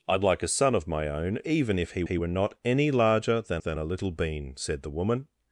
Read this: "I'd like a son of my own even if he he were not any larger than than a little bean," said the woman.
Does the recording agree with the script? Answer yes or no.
yes